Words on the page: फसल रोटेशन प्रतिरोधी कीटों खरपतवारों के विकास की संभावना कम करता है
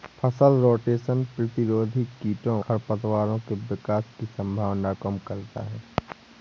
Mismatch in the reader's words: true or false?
false